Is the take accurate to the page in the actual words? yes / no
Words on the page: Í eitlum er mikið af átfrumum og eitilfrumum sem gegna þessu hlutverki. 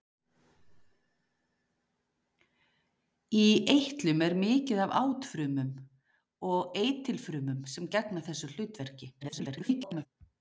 no